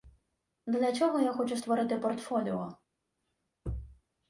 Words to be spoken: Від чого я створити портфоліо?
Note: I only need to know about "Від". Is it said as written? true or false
false